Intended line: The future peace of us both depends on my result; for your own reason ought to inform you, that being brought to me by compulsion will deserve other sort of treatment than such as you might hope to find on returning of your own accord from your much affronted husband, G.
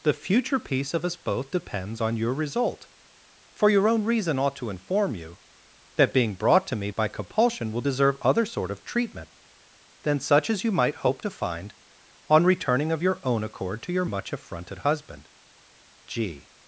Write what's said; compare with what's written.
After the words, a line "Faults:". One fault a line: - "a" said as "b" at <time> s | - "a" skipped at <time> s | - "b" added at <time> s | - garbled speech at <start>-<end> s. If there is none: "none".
The future peace of us both depends on your result; for your own reason ought to inform you, that being brought to me by compulsion will deserve other sort of treatment than such as you might hope to find on returning of your own accord to your much affronted husband, G.
Faults:
- "my" said as "your" at 2.2 s
- "from" said as "to" at 13.8 s